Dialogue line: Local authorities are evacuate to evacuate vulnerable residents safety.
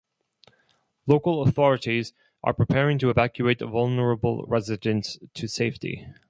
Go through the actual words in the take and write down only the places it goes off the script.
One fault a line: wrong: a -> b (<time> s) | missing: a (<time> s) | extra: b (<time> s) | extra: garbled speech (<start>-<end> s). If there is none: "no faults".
wrong: evacuate -> preparing (2.5 s)
extra: to (5.3 s)